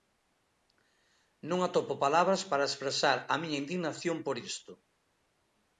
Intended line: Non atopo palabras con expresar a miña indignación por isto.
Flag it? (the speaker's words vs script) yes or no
yes